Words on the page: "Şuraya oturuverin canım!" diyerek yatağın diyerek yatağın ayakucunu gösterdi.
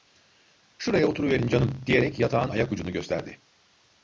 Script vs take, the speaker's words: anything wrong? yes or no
yes